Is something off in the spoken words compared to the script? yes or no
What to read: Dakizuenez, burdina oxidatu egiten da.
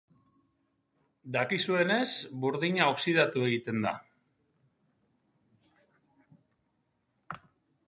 no